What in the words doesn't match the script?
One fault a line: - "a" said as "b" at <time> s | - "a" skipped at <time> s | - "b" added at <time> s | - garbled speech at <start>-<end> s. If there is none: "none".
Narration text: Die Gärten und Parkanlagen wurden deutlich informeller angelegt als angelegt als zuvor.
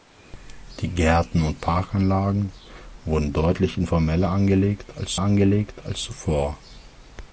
none